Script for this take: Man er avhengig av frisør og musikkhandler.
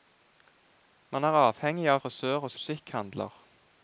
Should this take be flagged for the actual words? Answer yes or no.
no